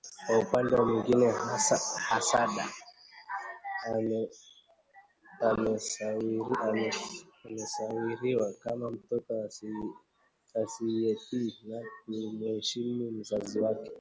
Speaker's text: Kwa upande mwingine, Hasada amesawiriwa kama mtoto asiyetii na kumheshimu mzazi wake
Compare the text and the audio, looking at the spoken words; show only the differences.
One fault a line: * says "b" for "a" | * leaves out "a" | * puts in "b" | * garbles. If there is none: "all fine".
all fine